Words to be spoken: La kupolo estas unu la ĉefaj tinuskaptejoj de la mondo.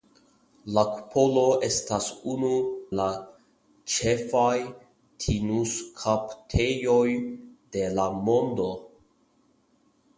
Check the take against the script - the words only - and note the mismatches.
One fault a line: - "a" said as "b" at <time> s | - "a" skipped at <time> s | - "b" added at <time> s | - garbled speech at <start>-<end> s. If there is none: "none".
none